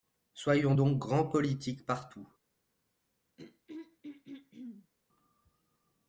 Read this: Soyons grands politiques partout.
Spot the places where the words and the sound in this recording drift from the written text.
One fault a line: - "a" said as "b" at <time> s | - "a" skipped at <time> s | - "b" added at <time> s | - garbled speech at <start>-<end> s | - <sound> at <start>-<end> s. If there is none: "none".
- "donc" added at 0.7 s
- throat clearing at 3.4-4.9 s